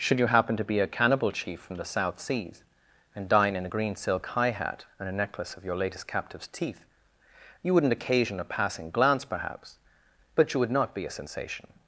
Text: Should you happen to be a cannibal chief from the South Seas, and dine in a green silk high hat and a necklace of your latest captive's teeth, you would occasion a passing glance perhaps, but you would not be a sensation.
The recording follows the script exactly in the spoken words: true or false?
false